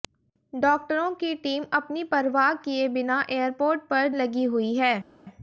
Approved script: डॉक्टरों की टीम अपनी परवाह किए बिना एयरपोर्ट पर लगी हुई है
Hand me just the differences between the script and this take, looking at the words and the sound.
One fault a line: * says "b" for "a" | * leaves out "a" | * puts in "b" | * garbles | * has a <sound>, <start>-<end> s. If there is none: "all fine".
all fine